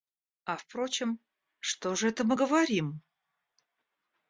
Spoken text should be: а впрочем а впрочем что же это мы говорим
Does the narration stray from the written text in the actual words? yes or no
yes